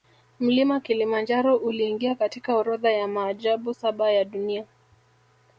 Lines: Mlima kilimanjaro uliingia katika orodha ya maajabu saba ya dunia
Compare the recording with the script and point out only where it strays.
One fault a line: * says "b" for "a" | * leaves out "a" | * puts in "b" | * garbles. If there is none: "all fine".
all fine